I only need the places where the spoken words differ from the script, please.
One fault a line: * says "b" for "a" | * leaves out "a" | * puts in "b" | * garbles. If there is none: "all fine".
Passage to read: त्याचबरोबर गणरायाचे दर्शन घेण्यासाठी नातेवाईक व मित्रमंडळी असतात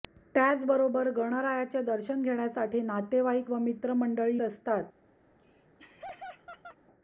all fine